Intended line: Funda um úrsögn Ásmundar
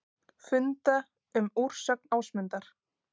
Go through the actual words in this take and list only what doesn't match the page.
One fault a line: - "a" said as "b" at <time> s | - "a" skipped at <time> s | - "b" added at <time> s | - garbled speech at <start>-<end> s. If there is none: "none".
none